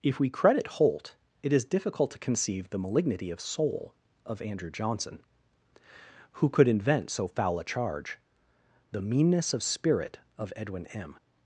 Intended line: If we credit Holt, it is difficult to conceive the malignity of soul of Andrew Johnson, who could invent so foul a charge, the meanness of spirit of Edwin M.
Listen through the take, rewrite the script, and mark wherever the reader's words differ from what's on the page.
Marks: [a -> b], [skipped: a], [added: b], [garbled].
If we credit Holt, it is difficult to conceive the malignity of soul of Andrew Johnson, who could invent so foul a charge, the meanness of spirit of Edwin M.